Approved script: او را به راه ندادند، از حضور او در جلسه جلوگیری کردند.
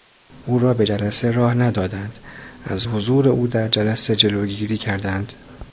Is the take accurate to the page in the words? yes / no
no